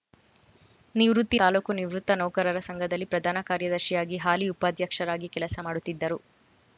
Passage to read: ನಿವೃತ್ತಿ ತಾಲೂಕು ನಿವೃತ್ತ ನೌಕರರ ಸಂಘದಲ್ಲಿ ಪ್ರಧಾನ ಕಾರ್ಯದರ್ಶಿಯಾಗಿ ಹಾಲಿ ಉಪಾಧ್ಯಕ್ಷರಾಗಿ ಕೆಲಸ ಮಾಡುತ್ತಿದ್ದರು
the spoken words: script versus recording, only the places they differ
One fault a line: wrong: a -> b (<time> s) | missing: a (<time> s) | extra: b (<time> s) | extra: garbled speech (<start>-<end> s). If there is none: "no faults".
no faults